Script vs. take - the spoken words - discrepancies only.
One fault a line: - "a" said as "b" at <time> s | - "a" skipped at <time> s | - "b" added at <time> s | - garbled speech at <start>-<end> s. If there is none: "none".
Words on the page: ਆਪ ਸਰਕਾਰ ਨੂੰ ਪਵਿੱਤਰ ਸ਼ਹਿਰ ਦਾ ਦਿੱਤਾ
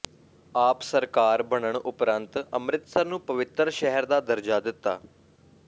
- "ਬਣਨ ਉਪਰੰਤ ਅੰਮ੍ਰਿਤਸਰ" added at 1.4 s
- "ਦਰਜਾ" added at 4.2 s